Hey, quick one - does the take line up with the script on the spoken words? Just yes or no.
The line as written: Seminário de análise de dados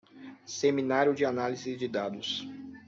yes